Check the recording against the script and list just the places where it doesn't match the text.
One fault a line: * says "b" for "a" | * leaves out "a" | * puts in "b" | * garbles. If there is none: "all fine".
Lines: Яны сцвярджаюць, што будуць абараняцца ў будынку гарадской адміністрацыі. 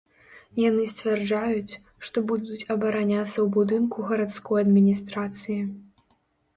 all fine